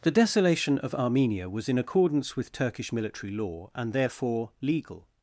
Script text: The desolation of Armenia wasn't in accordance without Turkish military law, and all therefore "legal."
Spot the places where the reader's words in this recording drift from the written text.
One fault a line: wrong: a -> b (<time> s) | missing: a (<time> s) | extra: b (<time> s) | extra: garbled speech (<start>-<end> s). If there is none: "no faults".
wrong: wasn't -> was (1.5 s)
wrong: without -> with (2.4 s)
missing: all (3.9 s)